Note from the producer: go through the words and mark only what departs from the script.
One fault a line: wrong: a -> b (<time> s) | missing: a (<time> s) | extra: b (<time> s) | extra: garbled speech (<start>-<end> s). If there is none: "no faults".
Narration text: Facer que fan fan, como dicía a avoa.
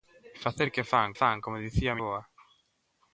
no faults